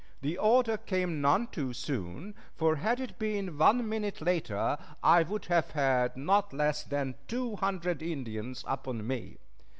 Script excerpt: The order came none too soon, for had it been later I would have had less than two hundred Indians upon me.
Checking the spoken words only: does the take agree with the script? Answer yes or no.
no